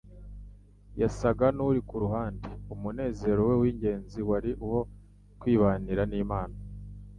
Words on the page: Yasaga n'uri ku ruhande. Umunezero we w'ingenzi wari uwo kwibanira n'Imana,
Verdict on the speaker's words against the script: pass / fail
pass